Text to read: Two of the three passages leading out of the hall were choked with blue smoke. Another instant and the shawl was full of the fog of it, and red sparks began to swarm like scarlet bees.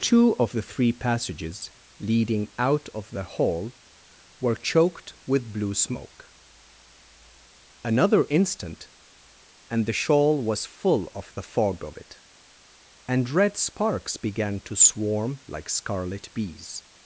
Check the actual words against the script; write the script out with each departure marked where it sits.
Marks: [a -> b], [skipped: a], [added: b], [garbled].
Two of the three passages leading out of the hall were choked with blue smoke. Another instant and the shawl was full of the fog of it, and red sparks began to swarm like scarlet bees.